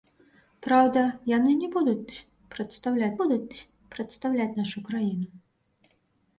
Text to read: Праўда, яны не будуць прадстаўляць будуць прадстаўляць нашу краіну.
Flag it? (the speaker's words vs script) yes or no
no